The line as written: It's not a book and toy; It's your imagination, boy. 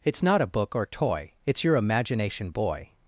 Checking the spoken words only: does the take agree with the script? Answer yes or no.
no